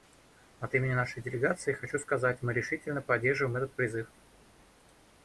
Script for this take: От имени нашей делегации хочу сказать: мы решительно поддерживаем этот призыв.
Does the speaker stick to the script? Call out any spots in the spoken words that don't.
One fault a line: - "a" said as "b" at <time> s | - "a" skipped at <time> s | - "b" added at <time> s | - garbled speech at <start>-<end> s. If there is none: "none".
none